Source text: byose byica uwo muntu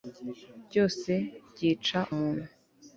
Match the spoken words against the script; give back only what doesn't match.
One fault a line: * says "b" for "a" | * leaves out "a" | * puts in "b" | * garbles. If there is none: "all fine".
* leaves out "uwo"